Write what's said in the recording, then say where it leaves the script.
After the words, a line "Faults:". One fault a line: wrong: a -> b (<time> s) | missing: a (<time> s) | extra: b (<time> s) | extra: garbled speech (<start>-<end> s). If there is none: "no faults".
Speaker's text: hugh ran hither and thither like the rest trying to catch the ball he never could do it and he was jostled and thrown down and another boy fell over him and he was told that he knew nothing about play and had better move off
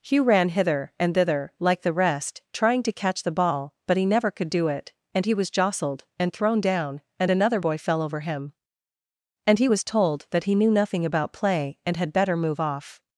hugh ran hither and thither like the rest trying to catch the ball but he never could do it and he was jostled and thrown down and another boy fell over him and he was told that he knew nothing about play and had better move off
Faults:
extra: but (3.9 s)